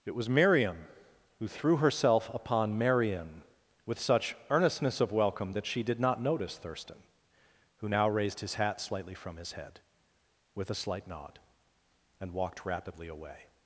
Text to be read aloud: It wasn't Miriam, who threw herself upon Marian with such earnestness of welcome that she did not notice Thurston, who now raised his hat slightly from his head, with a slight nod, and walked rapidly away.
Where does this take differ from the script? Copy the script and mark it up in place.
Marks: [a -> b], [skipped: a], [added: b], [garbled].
It [wasn't -> was] Miriam, who threw herself upon Marian with such earnestness of welcome that she did not notice Thurston, who now raised his hat slightly from his head, with a slight nod, and walked rapidly away.